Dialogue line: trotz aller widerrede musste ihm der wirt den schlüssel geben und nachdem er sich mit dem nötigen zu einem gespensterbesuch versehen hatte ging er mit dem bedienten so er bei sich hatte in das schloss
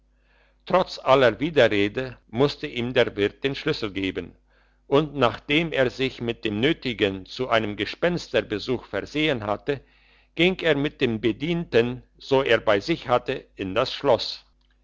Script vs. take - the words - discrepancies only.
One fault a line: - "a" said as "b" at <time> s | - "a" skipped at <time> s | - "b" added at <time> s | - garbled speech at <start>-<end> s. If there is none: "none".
none